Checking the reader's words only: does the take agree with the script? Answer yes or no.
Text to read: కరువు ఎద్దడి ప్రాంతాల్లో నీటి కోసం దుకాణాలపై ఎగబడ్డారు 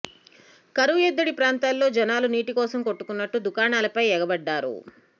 no